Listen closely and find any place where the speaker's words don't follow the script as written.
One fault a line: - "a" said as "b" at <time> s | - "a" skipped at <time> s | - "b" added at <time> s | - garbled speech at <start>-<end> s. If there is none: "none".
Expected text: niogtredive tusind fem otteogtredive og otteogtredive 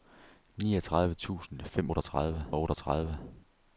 none